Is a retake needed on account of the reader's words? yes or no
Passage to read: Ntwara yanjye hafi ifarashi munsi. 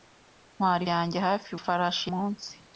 no